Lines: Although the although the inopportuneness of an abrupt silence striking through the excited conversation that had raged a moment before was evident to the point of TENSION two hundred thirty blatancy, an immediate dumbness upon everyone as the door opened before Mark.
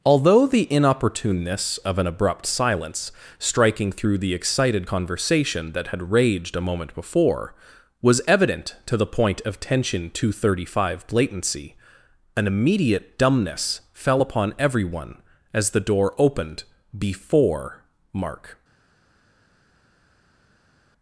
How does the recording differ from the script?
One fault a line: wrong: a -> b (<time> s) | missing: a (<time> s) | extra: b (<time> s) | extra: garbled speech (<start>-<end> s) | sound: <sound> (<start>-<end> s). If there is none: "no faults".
missing: although the (0.7 s)
extra: five (10.8 s)
extra: fell (13.9 s)